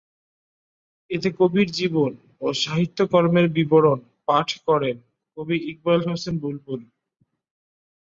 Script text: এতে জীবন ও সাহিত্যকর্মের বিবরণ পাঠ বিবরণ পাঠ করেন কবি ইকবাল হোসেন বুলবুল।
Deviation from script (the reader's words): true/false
true